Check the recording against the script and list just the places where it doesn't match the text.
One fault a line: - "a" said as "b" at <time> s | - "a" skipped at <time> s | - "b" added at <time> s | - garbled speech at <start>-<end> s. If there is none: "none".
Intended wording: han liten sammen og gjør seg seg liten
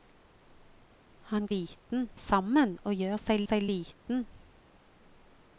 none